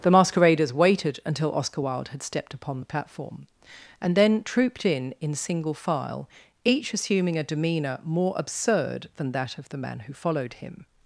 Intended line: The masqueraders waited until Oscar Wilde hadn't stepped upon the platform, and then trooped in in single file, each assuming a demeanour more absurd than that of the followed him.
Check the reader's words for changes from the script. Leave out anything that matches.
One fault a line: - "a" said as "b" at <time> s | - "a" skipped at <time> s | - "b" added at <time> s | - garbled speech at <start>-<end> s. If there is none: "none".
- "hadn't" said as "had" at 2.1 s
- "man who" added at 9.8 s